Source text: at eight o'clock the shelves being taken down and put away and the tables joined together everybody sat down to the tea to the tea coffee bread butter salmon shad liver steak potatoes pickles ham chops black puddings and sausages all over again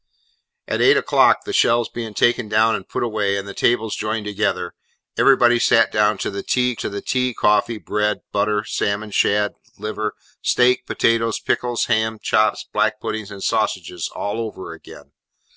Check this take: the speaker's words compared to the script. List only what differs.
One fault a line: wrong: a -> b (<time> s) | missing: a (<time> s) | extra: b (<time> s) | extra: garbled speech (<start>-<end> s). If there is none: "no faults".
no faults